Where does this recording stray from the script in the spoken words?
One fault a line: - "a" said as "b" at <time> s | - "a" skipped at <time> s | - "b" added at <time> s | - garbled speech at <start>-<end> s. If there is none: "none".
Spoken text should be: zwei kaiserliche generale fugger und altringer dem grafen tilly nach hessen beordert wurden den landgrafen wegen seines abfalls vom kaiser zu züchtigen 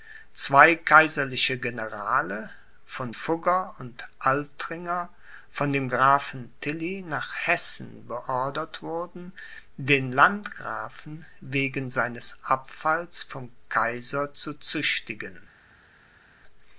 - "von" added at 2.9 s
- "von" added at 5.5 s